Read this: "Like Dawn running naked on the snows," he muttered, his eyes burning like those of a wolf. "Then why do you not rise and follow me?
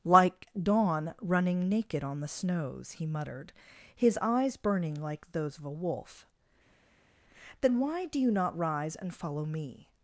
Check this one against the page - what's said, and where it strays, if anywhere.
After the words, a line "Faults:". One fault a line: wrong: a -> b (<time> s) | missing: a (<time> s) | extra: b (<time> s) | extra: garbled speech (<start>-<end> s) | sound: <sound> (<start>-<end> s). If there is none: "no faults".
"Like Dawn running naked on the snows," he muttered, his eyes burning like those of a wolf. "Then why do you not rise and follow me?
Faults:
no faults